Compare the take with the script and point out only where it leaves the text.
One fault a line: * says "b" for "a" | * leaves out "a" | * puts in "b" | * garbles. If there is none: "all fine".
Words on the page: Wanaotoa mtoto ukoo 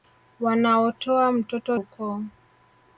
all fine